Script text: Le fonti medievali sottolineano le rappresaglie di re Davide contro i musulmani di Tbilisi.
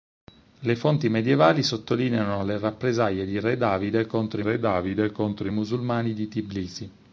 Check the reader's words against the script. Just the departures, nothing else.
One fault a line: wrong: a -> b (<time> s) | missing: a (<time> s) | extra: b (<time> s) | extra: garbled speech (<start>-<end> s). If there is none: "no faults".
extra: re Davide contro (4.4 s)